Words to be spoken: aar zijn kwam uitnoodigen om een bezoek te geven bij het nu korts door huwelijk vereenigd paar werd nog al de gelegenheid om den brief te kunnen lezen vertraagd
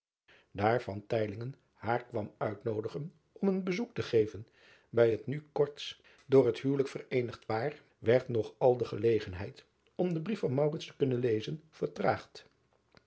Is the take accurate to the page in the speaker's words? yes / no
no